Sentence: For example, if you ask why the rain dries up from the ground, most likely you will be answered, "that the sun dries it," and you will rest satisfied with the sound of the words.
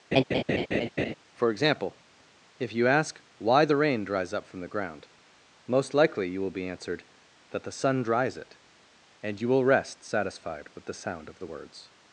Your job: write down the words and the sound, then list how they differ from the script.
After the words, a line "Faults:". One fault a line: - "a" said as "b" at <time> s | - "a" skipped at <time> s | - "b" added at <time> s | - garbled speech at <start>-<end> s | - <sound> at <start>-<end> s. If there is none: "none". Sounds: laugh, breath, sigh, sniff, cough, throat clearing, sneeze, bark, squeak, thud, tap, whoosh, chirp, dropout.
For example, if you ask why the rain dries up from the ground, most likely you will be answered, "that the sun dries it," and you will rest satisfied with the sound of the words.
Faults:
- laugh at 0.1-1.1 s